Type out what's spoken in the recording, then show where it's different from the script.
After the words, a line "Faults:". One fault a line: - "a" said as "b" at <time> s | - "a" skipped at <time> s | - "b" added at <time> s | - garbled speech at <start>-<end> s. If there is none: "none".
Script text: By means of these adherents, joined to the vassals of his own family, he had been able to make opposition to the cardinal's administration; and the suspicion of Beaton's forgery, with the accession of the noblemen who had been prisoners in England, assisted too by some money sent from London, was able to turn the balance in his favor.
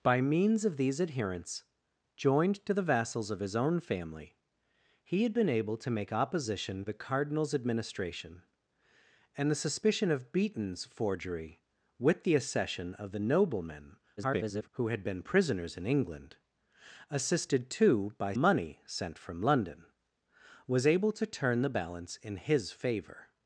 By means of these adherents, joined to the vassals of his own family, he had been able to make opposition the cardinal's administration; and the suspicion of Beaton's forgery, with the accession of the noblemen [garbled] who had been prisoners in England, assisted too by money sent from London, was able to turn the balance in his favor.
Faults:
- "to" skipped at 6.8 s
- garbled speech at 14.2-14.7 s
- "some" skipped at 18.3 s